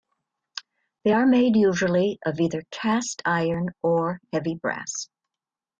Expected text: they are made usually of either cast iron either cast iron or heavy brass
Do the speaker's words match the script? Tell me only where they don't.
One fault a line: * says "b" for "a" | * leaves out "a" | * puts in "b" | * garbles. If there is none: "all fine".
* leaves out "either cast iron"